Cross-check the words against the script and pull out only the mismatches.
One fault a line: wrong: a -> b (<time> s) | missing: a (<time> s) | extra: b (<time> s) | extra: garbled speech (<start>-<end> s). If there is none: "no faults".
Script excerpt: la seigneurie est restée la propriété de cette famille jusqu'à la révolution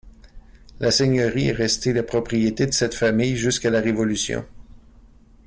no faults